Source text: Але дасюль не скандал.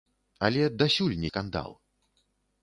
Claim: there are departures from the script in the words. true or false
false